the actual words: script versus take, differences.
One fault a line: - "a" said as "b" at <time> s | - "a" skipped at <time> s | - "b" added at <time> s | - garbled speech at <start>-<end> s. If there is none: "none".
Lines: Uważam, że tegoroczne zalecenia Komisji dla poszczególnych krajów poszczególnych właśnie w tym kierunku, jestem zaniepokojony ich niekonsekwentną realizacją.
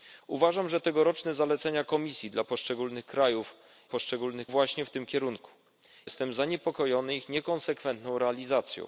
none